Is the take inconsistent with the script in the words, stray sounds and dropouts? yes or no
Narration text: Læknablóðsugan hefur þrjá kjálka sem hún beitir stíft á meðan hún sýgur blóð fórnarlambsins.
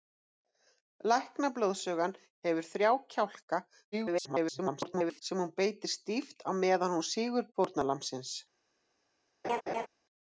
yes